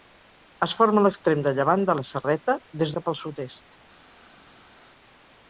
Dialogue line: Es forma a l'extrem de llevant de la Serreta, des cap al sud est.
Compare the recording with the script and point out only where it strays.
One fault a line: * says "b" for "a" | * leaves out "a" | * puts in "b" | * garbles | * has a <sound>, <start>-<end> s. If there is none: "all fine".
all fine